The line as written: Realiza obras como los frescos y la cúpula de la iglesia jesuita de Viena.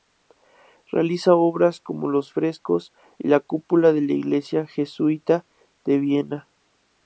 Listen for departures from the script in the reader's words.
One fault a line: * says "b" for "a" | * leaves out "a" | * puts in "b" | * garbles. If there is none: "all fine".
all fine